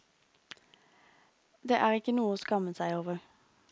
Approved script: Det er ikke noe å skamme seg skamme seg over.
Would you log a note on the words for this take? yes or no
yes